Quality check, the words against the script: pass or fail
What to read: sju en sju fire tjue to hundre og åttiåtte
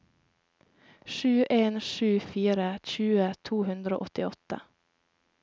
pass